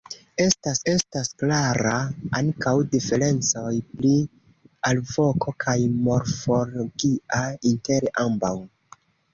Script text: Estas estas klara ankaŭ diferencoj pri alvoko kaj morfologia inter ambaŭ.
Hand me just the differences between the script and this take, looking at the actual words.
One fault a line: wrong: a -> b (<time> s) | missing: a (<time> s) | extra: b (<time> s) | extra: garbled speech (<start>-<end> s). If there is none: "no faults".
no faults